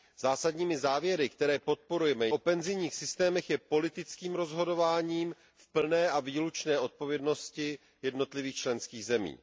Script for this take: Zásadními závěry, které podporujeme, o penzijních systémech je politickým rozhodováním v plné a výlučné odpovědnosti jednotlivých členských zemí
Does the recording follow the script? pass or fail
pass